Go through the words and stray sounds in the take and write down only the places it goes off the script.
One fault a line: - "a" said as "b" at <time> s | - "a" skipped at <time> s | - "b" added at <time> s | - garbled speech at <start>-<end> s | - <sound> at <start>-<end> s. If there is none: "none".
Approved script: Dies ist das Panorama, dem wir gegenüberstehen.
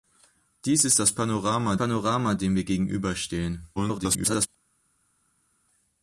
- "Panorama" added at 1.7 s
- garbled speech at 3.8-4.5 s